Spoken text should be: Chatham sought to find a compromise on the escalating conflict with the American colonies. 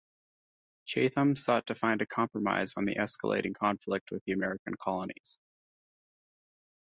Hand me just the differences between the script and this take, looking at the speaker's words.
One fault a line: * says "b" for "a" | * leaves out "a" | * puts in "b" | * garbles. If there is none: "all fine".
all fine